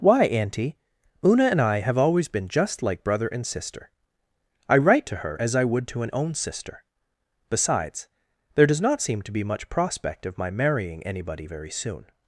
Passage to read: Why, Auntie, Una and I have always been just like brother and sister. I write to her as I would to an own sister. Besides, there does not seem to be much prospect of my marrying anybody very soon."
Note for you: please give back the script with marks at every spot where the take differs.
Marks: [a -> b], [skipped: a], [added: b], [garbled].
Why, Auntie, Una and I have always been just like brother and sister. I write to her as I would to an own sister. Besides, there does not seem to be much prospect of my marrying anybody very soon."